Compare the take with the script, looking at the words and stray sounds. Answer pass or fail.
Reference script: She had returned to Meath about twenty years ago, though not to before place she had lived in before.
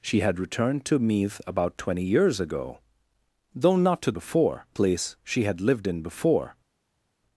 pass